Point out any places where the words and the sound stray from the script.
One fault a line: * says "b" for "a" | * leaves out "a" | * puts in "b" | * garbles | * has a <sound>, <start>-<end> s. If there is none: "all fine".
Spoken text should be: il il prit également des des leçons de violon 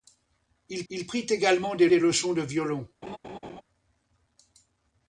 * has a laugh, 3.0-3.6 s